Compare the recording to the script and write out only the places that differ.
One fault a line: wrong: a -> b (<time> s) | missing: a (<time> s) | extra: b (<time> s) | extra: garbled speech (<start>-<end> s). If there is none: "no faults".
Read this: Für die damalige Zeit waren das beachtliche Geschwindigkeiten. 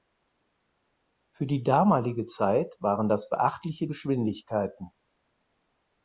no faults